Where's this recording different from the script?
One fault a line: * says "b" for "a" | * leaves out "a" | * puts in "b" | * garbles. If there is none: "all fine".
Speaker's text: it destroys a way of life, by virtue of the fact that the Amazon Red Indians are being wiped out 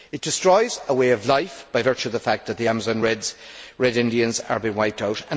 all fine